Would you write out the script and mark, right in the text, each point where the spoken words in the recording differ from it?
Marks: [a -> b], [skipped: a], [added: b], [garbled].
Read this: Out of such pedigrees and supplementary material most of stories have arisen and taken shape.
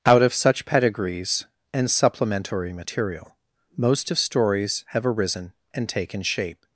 Out of such pedigrees and supplementary material most of stories have arisen and taken shape.